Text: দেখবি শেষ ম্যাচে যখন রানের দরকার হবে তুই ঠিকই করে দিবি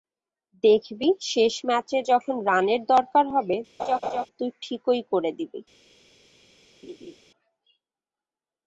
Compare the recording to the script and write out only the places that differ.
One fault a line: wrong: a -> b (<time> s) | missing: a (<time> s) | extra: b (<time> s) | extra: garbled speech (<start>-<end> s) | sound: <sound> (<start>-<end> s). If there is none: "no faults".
sound: laugh (3.8-4.3 s)
sound: laugh (6.8-7.2 s)